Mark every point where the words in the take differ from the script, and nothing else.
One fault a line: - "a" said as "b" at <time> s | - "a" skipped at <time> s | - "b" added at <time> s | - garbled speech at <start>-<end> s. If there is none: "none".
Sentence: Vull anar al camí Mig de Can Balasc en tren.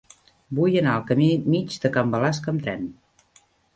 - "en" said as "amb" at 2.5 s